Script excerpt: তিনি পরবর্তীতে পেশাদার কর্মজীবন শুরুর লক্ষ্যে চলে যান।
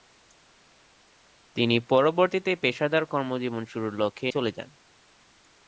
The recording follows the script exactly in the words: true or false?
true